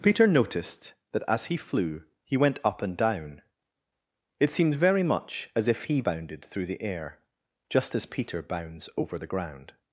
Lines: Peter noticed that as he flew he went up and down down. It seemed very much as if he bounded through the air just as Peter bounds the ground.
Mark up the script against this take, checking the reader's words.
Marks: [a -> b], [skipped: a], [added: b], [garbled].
Peter noticed that as he flew he went up and down [skipped: down.] It seemed very much as if he bounded through the air just as Peter bounds [added: over] the ground.